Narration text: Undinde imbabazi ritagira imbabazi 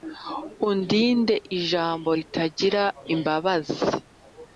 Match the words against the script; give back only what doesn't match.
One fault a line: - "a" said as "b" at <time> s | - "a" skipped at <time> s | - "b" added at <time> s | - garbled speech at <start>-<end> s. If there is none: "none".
- "imbabazi" said as "ijambo" at 1.6 s